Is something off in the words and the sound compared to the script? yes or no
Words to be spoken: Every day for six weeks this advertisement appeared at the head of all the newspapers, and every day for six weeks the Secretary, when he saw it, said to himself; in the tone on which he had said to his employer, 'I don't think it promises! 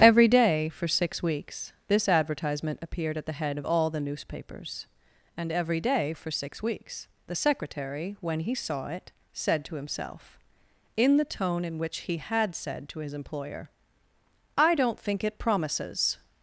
yes